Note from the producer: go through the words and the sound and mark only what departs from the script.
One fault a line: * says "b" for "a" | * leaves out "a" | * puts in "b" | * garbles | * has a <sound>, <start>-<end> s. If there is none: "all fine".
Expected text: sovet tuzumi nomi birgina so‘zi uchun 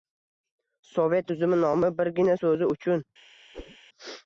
* has a whoosh, 3.5-3.8 s